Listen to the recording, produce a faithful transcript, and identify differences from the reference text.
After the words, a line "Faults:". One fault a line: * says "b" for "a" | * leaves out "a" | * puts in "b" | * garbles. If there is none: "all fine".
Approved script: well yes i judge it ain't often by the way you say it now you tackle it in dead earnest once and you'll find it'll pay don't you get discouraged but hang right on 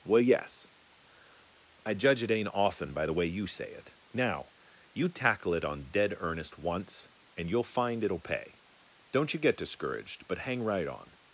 well yes i judge it ain't often by the way you say it now you tackle it on dead earnest once and you'll find it'll pay don't you get discouraged but hang right on
Faults:
* says "on" for "in"